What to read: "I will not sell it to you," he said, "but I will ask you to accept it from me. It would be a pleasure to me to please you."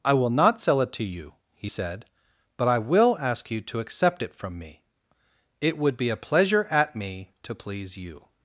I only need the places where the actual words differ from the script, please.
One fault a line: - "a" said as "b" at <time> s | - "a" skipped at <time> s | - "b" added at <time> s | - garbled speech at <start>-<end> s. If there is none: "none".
- "to" said as "at" at 6.7 s